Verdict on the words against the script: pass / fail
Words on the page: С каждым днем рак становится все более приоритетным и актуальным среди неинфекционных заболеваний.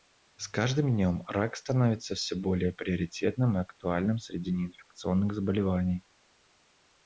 pass